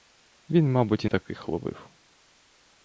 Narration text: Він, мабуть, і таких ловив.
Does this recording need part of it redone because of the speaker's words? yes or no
no